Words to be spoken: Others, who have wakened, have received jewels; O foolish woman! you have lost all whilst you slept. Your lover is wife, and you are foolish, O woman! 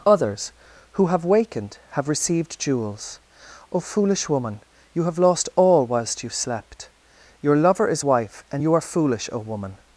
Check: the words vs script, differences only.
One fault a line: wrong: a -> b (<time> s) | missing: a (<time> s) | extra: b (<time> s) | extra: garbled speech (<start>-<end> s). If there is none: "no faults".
no faults